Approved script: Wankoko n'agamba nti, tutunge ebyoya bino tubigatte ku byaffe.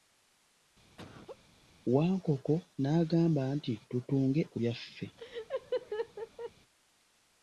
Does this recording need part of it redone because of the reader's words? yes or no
yes